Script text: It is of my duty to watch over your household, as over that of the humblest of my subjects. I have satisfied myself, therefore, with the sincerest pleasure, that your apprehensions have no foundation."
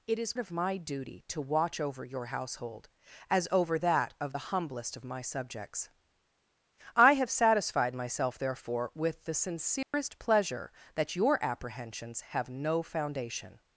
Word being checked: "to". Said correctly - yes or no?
yes